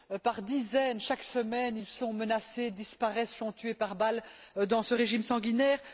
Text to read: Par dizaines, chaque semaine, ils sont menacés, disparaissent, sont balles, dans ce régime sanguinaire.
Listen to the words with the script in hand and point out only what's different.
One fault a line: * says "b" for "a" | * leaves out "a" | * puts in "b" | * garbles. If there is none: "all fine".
* puts in "tués par"